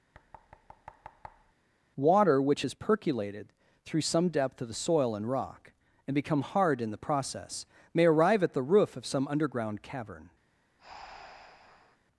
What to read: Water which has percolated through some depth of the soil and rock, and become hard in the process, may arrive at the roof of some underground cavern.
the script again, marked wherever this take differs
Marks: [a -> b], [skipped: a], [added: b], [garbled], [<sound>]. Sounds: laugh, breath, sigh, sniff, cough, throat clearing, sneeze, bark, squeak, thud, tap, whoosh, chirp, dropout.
[thud] Water which has percolated through some depth of the soil and rock, and become hard in the process, may arrive at the roof of some underground cavern. [breath]